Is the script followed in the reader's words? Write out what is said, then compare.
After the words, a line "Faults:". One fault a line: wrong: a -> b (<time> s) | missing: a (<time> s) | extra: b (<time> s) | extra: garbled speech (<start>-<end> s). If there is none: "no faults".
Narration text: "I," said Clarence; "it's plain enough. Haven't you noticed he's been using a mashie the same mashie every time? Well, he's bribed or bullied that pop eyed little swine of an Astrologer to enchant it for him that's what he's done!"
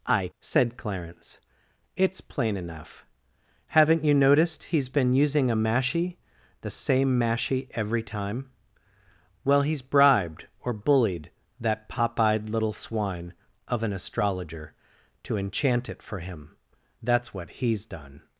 "I," said Clarence; "it's plain enough. Haven't you noticed he's been using a mashie the same mashie every time? Well, he's bribed or bullied that pop eyed little swine of an Astrologer to enchant it for him that's what he's done!"
Faults:
no faults